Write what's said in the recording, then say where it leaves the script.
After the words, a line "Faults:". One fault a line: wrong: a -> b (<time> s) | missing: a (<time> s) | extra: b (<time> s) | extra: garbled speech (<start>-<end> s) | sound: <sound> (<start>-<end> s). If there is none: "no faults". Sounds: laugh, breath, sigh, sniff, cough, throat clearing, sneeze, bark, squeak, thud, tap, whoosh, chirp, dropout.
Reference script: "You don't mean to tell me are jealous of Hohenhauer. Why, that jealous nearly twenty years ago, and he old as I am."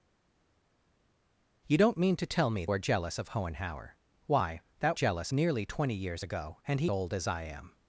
"You don't mean to tell me are jealous of Hohenhauer. Why, that jealous nearly twenty years ago, and he old as I am."
Faults:
no faults